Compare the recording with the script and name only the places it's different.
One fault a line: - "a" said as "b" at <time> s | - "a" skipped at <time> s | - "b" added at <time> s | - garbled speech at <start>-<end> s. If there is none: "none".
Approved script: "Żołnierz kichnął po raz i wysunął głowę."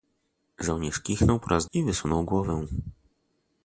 none